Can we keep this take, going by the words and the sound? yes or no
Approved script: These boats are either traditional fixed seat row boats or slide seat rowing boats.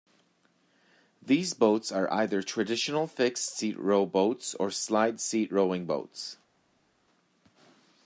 yes